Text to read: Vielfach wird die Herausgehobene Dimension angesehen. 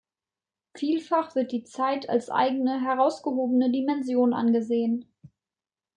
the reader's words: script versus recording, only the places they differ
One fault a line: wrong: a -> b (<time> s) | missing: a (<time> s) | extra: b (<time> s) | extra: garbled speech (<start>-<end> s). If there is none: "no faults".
extra: Zeit als eigene (1.6 s)